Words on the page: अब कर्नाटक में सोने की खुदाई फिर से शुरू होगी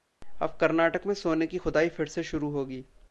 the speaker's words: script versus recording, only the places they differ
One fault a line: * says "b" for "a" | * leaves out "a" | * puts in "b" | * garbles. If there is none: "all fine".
all fine